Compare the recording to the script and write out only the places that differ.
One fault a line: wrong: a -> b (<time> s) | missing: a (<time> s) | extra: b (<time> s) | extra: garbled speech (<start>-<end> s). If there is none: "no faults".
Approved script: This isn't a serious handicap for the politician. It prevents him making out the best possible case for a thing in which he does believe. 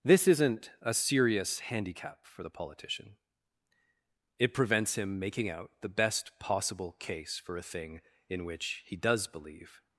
no faults